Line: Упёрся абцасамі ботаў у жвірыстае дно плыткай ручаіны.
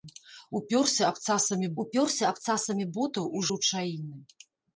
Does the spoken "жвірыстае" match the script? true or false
false